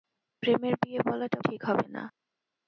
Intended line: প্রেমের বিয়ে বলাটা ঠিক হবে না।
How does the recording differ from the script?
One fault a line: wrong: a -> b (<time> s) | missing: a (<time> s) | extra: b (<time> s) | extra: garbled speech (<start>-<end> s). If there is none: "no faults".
no faults